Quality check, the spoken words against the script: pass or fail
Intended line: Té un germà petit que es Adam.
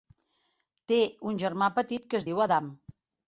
fail